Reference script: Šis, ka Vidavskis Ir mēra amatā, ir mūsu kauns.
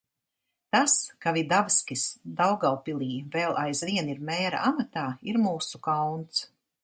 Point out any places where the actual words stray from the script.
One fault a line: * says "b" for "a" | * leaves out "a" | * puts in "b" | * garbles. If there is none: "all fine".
* says "Tas" for "Šis"
* puts in "Daugavpilī vēl aizvien"